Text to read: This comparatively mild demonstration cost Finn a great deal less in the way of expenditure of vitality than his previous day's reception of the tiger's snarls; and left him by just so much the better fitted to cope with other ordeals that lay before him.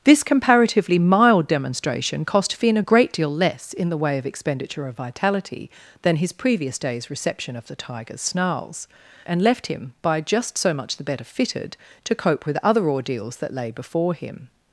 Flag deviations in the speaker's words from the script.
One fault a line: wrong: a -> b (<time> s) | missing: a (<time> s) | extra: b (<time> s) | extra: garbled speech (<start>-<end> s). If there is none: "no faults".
no faults